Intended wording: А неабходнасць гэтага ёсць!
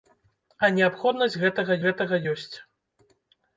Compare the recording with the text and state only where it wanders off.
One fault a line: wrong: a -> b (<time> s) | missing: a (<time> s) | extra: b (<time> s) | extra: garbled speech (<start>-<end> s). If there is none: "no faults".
extra: гэтага (1.8 s)